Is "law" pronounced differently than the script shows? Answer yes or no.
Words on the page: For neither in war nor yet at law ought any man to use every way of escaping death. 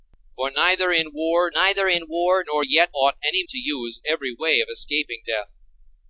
yes